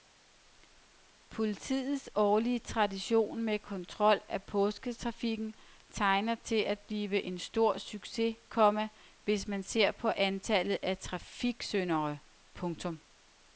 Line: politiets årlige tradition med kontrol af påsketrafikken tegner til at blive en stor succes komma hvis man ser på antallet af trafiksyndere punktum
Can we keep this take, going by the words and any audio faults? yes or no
yes